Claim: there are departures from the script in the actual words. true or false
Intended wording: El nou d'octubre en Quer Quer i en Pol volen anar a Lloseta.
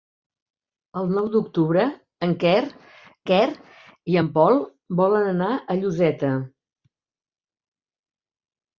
false